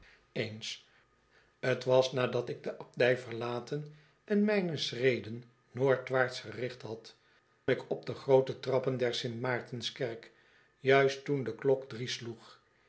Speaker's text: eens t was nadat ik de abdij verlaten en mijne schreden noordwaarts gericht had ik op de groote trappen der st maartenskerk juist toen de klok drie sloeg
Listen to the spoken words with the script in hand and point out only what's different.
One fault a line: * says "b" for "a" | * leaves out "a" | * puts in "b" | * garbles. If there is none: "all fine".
all fine